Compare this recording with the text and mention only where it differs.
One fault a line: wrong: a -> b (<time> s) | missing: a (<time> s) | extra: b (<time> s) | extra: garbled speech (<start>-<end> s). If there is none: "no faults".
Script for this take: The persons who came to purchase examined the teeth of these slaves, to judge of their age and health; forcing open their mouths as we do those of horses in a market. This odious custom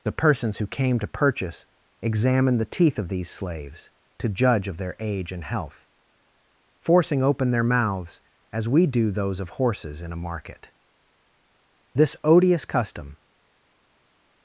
no faults